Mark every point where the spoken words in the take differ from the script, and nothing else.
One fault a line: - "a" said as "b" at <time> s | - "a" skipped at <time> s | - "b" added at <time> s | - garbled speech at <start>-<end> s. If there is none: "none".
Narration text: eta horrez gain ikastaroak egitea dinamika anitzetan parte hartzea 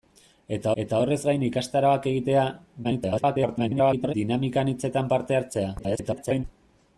- "eta" added at 0.8 s
- garbled speech at 2.8-4.1 s
- garbled speech at 5.8-6.4 s